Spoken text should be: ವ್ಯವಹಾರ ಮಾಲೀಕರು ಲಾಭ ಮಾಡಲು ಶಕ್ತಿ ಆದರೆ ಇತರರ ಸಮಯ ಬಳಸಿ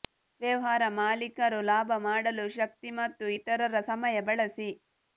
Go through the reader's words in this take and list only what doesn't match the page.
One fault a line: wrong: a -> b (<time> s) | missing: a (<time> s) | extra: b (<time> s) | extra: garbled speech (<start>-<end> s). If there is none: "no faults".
wrong: ಆದರೆ -> ಮತ್ತು (3.0 s)